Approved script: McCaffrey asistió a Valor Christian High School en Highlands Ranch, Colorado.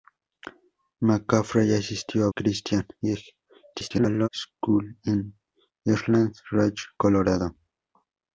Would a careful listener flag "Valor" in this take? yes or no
yes